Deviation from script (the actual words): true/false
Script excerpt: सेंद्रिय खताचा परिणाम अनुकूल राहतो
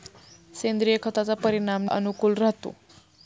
false